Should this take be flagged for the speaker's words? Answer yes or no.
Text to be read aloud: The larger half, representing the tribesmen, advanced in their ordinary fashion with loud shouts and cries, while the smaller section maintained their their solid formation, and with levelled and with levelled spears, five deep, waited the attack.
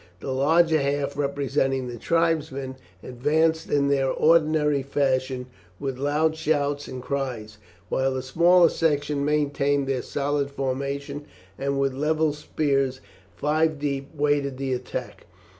yes